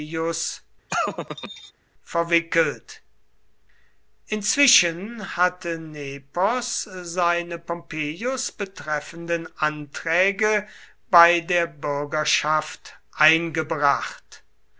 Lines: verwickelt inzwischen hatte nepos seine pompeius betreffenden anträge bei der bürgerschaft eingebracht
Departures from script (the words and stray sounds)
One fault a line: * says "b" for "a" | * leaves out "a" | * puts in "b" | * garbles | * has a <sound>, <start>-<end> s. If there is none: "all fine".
* has a laugh, 0.9-1.7 s